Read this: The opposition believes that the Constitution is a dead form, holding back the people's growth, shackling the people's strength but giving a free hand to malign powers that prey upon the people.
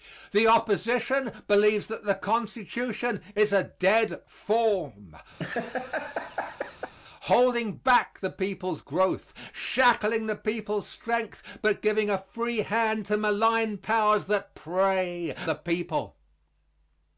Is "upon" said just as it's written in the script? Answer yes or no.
no